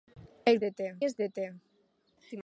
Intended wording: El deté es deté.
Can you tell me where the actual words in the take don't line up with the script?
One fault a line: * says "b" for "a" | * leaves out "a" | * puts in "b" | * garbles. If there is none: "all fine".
all fine